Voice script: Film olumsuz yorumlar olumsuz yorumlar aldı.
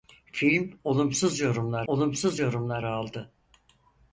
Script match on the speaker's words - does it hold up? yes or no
yes